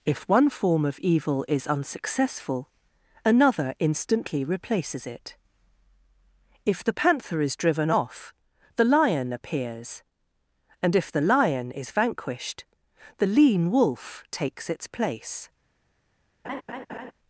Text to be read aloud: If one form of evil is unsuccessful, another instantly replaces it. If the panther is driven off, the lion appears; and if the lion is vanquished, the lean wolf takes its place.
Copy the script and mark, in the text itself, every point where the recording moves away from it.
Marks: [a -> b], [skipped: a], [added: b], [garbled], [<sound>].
If one form of evil is unsuccessful, another instantly replaces it. If the panther is driven off, the lion appears; and if the lion is vanquished, the lean wolf takes its place. [laugh]